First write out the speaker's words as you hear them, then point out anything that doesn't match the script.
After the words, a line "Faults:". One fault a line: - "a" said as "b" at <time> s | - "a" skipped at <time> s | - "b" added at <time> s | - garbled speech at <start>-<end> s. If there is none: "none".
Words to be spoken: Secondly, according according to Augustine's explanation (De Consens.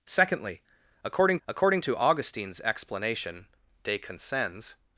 Secondly, according according to Augustine's explanation (De Consens.
Faults:
none